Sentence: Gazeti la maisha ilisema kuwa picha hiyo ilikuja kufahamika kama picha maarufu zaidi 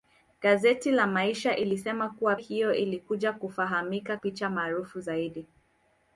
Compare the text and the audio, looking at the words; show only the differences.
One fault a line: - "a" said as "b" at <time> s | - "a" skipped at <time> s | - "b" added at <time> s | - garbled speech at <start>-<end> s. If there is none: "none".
- "picha" skipped at 2.4 s
- "kama" skipped at 4.2 s